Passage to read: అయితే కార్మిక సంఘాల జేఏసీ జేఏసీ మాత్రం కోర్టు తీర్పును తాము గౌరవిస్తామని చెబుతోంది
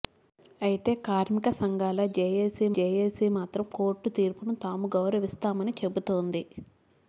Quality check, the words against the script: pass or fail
pass